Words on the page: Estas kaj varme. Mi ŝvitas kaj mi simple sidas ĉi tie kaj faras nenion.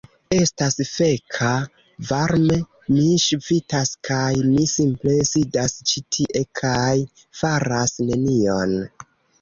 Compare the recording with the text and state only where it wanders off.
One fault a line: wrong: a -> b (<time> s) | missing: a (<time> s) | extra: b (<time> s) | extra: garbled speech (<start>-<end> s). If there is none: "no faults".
wrong: kaj -> feka (0.9 s)